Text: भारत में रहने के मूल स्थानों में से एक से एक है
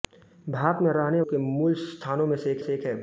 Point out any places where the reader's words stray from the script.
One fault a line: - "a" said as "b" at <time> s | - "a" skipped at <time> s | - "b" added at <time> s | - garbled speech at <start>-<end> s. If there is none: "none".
none